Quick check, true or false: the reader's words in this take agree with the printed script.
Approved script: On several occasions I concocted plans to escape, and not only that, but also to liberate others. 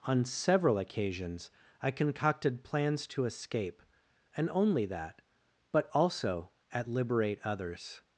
false